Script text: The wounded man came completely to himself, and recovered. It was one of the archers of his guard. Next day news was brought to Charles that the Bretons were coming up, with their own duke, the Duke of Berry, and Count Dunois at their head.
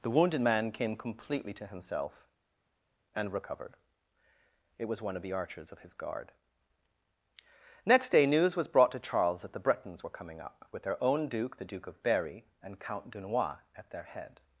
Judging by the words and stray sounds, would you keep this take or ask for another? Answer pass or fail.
pass